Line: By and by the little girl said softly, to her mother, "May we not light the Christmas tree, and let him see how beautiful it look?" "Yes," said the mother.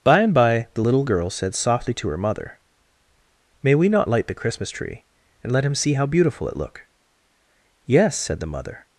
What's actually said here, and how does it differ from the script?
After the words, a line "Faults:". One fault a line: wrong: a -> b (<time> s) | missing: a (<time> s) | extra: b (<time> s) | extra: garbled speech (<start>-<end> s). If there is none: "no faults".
By and by the little girl said softly, to her mother, "May we not light the Christmas tree, and let him see how beautiful it look?" "Yes," said the mother.
Faults:
no faults